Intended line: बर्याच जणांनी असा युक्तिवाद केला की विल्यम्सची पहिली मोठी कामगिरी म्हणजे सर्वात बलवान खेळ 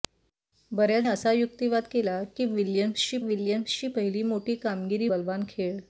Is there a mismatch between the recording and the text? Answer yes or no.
yes